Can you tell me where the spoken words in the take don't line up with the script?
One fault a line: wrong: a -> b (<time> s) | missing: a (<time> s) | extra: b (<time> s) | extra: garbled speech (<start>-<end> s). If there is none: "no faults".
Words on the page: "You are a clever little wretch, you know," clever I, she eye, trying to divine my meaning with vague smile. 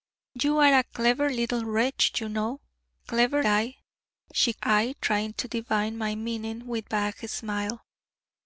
no faults